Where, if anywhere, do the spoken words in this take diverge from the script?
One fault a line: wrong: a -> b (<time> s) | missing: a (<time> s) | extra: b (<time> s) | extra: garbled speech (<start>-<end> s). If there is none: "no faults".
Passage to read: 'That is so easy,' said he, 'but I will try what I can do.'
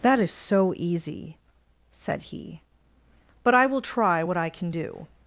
no faults